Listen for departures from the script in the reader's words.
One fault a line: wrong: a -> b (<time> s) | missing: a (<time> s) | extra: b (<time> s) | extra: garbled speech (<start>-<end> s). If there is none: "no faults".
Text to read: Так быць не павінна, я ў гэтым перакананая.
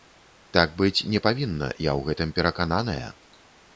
no faults